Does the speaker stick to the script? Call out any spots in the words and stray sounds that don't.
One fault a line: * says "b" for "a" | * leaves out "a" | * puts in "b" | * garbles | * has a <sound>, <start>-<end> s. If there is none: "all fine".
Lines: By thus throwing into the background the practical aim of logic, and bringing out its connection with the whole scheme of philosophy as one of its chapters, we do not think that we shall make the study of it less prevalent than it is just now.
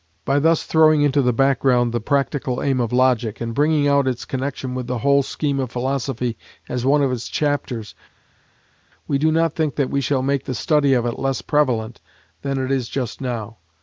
all fine